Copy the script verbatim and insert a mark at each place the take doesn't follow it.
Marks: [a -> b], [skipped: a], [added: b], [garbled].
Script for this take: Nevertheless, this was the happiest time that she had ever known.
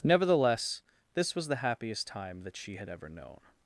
Nevertheless, this was the happiest time that she had ever known.